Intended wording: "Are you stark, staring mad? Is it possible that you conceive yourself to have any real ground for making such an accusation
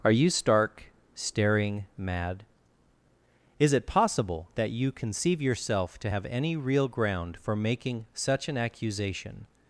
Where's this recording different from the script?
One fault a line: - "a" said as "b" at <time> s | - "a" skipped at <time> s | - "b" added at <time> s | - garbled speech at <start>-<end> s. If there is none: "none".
none